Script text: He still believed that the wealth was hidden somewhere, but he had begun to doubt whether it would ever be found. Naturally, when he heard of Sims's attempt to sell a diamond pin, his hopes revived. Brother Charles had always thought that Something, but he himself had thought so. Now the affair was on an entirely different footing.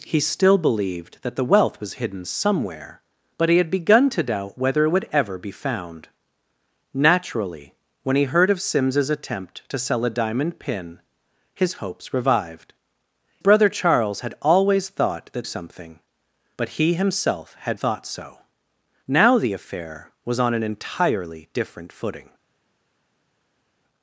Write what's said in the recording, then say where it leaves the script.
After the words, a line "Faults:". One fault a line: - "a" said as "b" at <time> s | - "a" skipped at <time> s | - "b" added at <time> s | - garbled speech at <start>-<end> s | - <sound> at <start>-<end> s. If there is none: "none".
He still believed that the wealth was hidden somewhere, but he had begun to doubt whether it would ever be found. Naturally, when he heard of Sims's attempt to sell a diamond pin, his hopes revived. Brother Charles had always thought that Something, but he himself had thought so. Now the affair was on an entirely different footing.
Faults:
none